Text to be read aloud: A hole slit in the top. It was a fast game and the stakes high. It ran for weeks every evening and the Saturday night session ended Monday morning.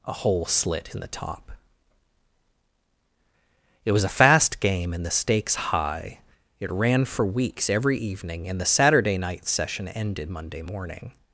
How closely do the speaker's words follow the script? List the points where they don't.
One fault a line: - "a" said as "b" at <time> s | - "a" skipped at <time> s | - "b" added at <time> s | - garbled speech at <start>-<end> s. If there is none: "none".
none